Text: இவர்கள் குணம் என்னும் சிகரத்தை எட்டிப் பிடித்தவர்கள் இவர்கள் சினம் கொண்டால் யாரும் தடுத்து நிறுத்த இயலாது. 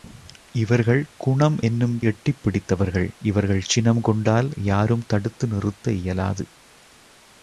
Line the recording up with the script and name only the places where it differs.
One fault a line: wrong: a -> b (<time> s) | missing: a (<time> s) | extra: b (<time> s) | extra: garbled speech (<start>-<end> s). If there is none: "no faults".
missing: சிகரத்தை (2.0 s)